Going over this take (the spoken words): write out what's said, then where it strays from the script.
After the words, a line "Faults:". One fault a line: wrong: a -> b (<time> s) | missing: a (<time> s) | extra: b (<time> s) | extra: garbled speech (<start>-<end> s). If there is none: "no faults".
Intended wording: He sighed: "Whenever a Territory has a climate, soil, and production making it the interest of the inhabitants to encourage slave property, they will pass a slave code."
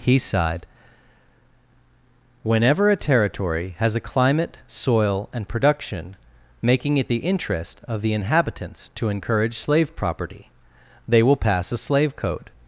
He sighed: "Whenever a Territory has a climate, soil, and production making it the interest of the inhabitants to encourage slave property, they will pass a slave code."
Faults:
no faults